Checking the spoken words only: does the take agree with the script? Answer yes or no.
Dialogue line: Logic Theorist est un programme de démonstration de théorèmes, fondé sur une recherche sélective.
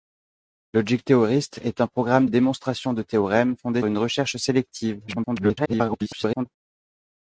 no